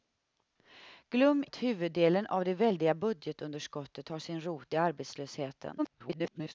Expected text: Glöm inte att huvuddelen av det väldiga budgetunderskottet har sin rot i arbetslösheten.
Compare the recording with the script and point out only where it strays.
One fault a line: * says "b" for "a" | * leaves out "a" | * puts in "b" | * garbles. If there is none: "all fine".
* leaves out "inte"
* garbles